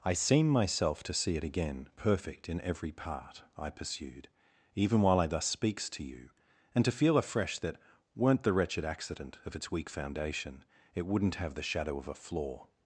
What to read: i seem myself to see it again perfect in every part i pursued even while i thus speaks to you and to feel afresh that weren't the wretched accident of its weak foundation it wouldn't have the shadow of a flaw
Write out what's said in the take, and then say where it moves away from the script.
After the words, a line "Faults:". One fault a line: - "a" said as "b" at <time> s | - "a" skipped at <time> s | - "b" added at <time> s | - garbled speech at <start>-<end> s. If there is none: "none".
i seem myself to see it again perfect in every part i pursued even while i thus speaks to you and to feel afresh that weren't the wretched accident of its weak foundation it wouldn't have the shadow of a flaw
Faults:
none